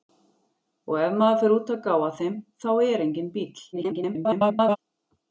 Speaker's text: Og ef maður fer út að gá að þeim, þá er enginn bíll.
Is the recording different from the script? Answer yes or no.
yes